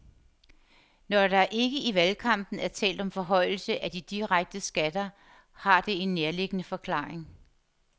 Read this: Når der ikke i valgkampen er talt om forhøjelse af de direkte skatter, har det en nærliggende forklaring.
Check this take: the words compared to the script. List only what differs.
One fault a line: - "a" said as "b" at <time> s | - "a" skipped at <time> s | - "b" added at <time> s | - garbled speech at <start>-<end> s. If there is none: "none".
none